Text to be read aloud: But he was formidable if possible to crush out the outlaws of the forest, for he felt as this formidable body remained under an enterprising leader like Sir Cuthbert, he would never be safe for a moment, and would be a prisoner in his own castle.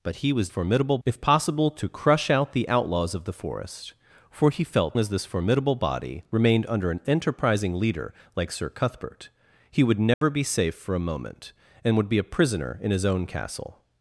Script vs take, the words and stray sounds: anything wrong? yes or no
yes